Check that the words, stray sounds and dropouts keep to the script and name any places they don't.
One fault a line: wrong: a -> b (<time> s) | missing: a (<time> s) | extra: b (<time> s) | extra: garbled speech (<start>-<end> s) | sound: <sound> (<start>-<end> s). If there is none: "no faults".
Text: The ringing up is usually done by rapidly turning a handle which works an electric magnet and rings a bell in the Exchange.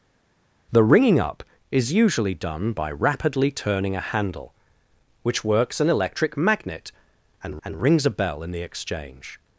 extra: and (7.6 s)